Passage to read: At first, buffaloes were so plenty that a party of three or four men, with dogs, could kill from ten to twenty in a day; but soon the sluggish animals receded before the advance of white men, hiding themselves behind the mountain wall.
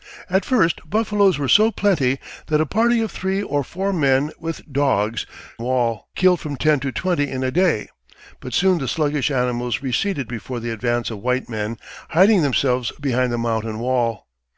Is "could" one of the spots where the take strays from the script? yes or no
yes